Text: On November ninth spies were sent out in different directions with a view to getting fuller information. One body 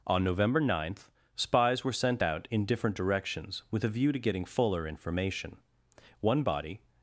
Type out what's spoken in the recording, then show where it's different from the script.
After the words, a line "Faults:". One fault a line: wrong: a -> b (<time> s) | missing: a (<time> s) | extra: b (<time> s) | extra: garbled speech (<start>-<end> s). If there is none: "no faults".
On November ninth spies were sent out in different directions with a view to getting fuller information. One body
Faults:
no faults